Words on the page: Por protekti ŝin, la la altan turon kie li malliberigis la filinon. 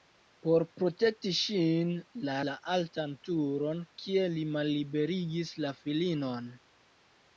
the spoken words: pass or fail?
pass